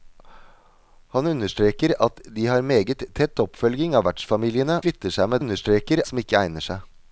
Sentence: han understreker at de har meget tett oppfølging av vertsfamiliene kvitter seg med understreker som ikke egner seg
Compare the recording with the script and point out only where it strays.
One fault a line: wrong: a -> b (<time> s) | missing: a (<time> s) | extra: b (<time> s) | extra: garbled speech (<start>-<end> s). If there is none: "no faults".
no faults